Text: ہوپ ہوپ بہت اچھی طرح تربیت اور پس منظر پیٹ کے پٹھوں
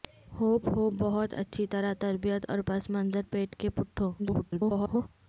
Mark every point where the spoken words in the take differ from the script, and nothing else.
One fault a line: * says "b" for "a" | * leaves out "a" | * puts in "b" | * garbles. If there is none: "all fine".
* garbles